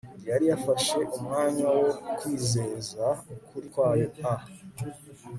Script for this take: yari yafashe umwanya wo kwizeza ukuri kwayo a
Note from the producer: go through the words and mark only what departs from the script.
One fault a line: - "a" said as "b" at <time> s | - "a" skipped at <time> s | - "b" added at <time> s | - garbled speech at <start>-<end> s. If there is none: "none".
none